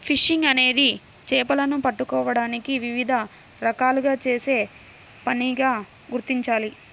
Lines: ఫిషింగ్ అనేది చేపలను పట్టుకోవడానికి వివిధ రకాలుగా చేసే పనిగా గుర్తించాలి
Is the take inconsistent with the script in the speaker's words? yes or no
no